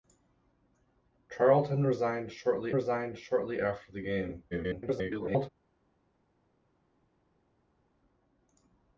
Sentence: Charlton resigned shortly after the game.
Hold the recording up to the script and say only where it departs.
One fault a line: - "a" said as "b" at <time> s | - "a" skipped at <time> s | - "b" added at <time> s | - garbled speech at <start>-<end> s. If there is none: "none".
- "resigned shortly" added at 2.7 s
- garbled speech at 4.5-5.5 s